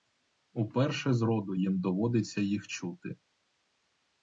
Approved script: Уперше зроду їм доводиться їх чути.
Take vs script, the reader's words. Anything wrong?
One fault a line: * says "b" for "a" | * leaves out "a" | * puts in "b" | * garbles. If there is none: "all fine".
all fine